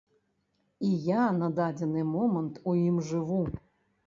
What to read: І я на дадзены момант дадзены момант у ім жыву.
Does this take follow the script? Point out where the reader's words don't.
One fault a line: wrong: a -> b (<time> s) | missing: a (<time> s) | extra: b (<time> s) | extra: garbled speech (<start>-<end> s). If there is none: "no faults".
missing: дадзены момант (2.6 s)